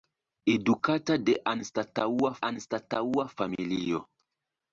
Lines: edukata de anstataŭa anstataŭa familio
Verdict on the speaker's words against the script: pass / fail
pass